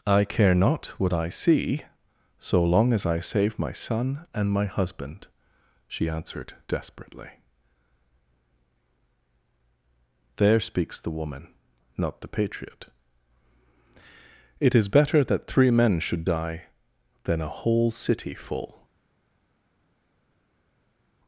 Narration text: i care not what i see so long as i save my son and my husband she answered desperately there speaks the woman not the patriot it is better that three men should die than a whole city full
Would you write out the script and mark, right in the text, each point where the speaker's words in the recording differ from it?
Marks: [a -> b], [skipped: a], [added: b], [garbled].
i care not what i see so long as i save my son and my husband she answered desperately there speaks the woman not the patriot it is better that three men should die than a whole city full